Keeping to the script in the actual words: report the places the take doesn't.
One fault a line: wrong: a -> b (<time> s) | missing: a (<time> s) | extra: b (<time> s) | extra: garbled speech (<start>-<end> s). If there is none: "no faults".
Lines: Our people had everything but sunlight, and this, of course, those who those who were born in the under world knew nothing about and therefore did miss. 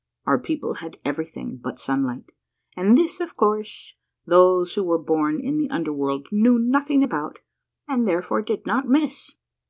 missing: those who (4.9 s)
extra: not (8.7 s)